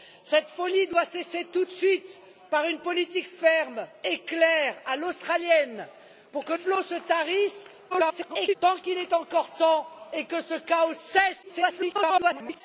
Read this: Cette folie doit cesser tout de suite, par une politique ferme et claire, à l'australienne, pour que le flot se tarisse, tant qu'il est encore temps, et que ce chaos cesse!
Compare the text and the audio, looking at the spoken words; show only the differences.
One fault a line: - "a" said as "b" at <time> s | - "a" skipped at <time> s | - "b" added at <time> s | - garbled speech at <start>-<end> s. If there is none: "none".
- "le" skipped at 6.5 s
- garbled speech at 7.9-8.6 s
- garbled speech at 11.4-12.6 s